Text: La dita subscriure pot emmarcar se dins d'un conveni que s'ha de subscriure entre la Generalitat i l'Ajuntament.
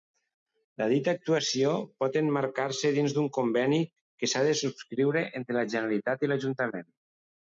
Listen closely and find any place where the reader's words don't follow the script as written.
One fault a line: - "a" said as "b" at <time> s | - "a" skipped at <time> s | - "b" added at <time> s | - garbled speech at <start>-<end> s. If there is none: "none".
- "subscriure" said as "actuació" at 1.2 s